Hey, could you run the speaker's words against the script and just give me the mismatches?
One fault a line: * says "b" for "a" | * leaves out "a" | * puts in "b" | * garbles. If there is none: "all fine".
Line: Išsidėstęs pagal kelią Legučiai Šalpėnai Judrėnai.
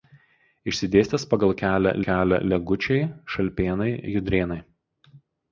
* puts in "kelią"